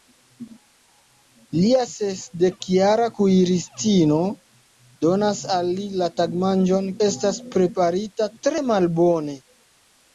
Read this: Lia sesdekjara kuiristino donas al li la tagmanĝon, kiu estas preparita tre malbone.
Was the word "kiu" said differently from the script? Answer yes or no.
yes